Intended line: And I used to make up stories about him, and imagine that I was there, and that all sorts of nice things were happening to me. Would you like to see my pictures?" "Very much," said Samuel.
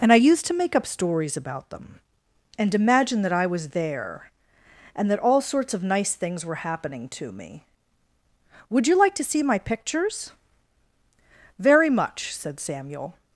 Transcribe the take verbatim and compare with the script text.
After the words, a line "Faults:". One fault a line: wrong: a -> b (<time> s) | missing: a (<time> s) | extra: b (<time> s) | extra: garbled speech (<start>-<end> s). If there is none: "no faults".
And I used to make up stories about them, and imagine that I was there, and that all sorts of nice things were happening to me. Would you like to see my pictures?" "Very much," said Samuel.
Faults:
wrong: him -> them (1.7 s)